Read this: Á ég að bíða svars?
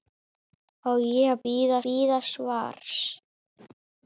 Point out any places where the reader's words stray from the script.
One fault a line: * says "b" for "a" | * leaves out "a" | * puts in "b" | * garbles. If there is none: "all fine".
* puts in "bíða"